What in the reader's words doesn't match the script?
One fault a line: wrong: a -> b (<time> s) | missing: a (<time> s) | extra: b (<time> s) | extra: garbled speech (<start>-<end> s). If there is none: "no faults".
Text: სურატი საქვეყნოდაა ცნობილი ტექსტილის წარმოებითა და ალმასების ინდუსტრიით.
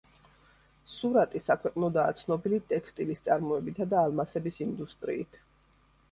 no faults